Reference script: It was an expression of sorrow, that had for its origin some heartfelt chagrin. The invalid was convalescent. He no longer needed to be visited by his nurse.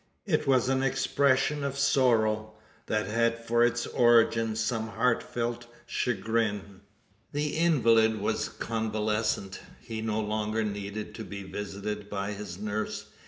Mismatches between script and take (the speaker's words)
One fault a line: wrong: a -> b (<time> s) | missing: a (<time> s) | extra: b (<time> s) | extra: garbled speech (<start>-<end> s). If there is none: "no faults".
no faults